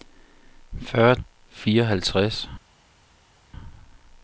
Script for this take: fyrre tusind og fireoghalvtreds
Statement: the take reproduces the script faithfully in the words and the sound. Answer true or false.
false